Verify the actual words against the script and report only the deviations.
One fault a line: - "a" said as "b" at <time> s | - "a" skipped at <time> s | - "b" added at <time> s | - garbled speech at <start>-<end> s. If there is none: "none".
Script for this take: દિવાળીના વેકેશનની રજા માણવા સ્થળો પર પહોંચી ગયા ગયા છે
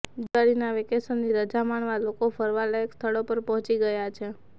- "લોકો ફરવાલાયક" added at 2.0 s
- "ગયા" skipped at 4.1 s